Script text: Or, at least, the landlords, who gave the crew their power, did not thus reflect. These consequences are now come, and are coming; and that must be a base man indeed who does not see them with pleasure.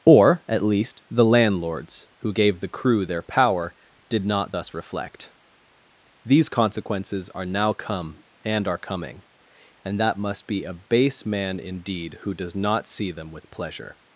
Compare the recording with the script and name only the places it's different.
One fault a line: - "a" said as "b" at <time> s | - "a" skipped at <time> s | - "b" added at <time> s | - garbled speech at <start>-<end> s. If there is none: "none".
none